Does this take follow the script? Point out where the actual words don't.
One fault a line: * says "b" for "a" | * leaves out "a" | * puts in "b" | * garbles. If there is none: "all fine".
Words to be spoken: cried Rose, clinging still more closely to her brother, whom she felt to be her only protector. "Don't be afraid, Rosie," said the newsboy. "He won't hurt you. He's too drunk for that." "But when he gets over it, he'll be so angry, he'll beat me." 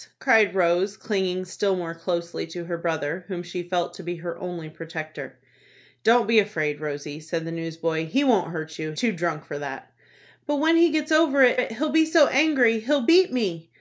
* leaves out "He's"
* puts in "it"